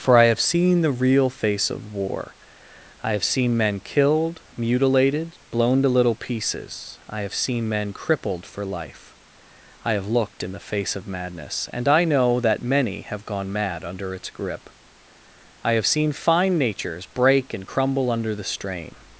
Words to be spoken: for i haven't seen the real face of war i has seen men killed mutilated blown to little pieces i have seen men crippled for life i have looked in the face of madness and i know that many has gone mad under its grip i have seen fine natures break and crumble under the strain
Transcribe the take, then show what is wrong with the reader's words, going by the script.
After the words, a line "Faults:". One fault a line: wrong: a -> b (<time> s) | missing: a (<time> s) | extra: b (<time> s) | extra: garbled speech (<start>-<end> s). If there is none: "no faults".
for i have seen the real face of war i have seen men killed mutilated blown to little pieces i have seen men crippled for life i have looked in the face of madness and i know that many have gone mad under its grip i have seen fine natures break and crumble under the strain
Faults:
wrong: haven't -> have (0.2 s)
wrong: has -> have (3.1 s)
wrong: has -> have (13.1 s)